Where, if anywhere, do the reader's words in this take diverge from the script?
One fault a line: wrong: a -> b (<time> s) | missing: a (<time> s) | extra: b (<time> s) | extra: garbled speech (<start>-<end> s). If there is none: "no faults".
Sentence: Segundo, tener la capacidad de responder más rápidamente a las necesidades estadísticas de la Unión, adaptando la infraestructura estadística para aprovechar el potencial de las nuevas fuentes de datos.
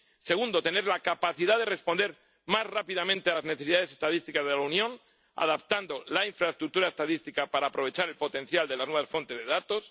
no faults